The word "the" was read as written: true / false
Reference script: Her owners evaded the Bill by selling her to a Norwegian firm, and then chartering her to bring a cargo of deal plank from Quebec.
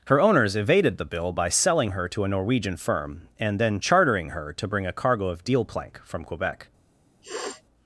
true